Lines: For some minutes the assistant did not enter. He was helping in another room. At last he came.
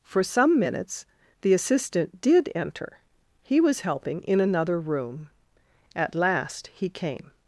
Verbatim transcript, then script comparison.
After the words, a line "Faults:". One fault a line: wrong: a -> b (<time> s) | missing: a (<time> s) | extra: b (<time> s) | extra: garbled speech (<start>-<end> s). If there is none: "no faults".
For some minutes the assistant did enter. He was helping in another room. At last he came.
Faults:
missing: not (2.5 s)